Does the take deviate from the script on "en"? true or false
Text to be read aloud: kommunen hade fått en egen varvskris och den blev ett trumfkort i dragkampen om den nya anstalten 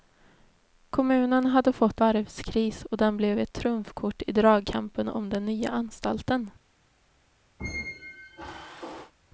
true